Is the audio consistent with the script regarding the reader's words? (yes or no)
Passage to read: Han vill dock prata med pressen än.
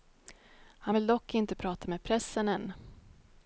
no